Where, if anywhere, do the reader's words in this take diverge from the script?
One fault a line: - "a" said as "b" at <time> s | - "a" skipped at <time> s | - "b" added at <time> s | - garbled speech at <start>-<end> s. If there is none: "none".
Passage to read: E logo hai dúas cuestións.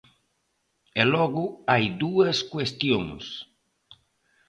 none